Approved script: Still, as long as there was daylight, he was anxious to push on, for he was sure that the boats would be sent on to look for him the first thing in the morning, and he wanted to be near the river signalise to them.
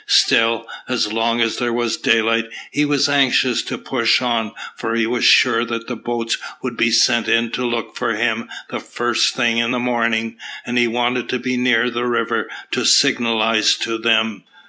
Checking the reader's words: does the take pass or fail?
fail